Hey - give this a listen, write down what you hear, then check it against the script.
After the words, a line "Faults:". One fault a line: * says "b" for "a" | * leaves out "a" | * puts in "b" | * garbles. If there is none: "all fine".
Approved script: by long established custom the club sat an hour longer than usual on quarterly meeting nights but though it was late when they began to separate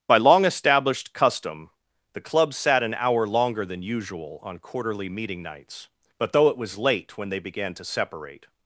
by long established custom the club sat an hour longer than usual on quarterly meeting nights but though it was late when they began to separate
Faults:
all fine